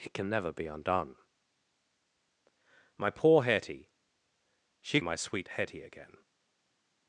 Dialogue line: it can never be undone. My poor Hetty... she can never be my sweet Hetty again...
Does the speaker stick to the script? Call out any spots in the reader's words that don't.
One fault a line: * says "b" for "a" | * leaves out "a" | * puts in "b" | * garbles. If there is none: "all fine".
* leaves out "can never be"